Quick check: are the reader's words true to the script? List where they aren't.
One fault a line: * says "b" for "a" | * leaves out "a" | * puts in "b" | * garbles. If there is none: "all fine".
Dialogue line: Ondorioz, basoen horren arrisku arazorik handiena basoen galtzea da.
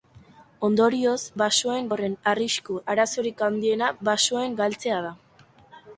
all fine